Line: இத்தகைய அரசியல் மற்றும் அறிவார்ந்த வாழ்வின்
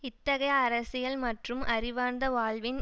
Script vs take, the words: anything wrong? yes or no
no